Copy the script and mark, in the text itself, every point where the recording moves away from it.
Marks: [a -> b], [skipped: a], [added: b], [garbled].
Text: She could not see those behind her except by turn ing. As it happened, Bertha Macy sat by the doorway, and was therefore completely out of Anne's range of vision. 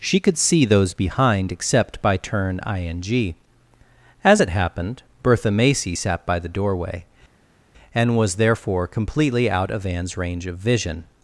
She could [skipped: not] see those behind [skipped: her] except by turn ing. As it happened, Bertha Macy sat by the doorway, and was therefore completely out of Anne's range of vision.